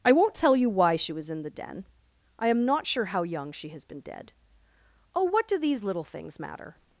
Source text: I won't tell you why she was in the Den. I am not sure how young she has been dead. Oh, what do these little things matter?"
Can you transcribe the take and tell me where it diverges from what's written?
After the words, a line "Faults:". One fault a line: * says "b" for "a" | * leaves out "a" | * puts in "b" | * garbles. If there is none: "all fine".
I won't tell you why she was in the Den. I am not sure how young she has been dead. Oh, what do these little things matter?"
Faults:
all fine